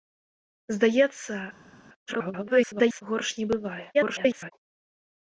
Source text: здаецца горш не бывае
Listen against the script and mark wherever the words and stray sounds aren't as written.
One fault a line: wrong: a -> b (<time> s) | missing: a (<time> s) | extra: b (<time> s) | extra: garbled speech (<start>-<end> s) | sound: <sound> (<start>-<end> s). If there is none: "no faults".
extra: garbled speech (2.1-3.0 s)
extra: garbled speech (3.9-4.5 s)